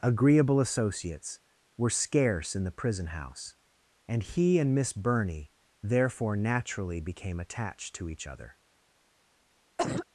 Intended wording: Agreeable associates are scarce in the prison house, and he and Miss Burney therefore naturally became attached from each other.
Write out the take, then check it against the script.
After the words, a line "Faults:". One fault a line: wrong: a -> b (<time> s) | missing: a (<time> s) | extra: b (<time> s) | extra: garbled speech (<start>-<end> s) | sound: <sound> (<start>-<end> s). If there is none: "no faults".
Agreeable associates were scarce in the prison house, and he and Miss Burney therefore naturally became attached to each other.
Faults:
wrong: are -> were (1.8 s)
wrong: from -> to (8.0 s)
sound: cough (9.8-10.1 s)